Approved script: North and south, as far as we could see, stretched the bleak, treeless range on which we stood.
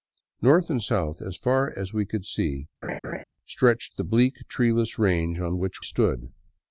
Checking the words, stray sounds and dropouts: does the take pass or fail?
fail